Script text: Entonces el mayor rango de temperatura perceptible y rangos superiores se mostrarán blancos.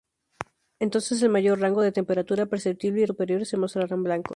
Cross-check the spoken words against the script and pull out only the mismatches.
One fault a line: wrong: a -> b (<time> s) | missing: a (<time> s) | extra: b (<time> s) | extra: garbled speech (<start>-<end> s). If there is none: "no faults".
missing: rangos (3.1 s)